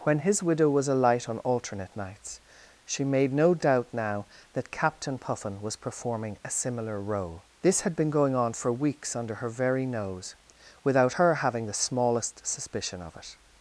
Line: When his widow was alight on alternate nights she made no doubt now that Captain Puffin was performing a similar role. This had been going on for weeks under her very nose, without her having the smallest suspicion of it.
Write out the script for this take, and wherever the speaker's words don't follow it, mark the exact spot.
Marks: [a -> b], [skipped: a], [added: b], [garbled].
When his widow was alight on alternate nights she made no doubt now that Captain Puffin was performing a similar role. This had been going on for weeks under her very nose, without her having the smallest suspicion of it.